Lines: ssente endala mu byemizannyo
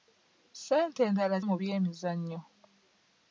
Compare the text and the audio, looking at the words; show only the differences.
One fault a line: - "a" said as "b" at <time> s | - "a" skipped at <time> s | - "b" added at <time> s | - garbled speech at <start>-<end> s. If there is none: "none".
none